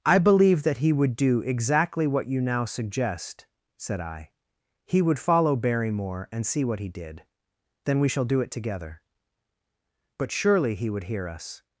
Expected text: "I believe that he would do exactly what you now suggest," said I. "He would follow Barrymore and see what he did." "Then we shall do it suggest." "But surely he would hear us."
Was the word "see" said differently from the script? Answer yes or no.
no